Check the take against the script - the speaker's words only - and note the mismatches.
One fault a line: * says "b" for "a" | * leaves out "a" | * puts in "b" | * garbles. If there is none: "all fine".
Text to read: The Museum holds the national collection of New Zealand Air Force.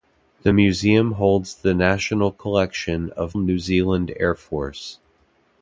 all fine